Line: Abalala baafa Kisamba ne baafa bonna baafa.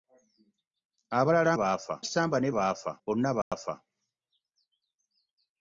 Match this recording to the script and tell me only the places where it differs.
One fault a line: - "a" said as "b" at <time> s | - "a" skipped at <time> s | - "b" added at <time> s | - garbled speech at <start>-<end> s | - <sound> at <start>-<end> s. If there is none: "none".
- dropout at 3.4-3.5 s